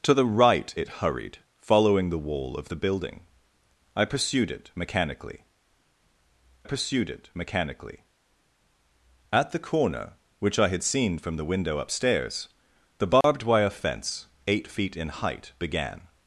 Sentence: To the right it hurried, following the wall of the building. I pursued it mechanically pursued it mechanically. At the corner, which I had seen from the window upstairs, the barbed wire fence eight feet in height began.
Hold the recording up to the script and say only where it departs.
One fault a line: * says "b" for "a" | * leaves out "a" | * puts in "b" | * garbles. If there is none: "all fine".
all fine